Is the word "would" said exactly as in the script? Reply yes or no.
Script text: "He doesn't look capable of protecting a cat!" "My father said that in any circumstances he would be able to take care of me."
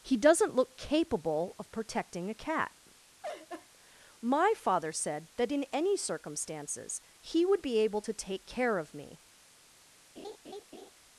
yes